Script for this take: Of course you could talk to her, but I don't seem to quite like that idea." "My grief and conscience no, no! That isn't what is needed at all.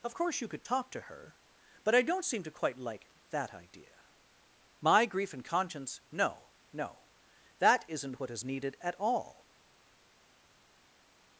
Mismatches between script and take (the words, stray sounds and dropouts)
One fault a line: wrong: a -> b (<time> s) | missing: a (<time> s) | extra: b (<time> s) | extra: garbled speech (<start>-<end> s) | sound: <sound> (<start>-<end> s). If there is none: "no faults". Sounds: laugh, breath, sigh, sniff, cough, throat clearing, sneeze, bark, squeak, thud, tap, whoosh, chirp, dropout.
no faults